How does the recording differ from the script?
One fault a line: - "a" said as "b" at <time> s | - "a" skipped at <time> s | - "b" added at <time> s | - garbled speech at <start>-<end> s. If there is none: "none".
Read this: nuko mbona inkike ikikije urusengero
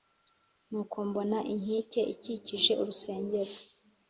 none